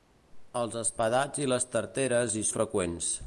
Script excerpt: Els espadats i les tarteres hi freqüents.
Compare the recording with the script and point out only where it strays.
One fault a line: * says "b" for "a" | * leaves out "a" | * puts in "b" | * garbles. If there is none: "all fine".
all fine